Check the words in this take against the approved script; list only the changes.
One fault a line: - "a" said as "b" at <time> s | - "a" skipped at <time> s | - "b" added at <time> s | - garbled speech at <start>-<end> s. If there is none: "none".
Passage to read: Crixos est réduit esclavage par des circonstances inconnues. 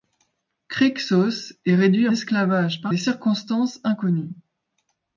none